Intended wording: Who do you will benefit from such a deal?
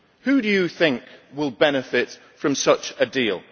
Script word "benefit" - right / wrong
right